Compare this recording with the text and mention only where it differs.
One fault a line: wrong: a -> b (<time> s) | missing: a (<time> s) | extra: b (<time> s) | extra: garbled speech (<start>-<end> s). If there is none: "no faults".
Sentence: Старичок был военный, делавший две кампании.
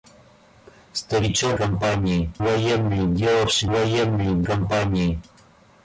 wrong: был -> кампании (1.5 s)
wrong: две -> военный (3.7 s)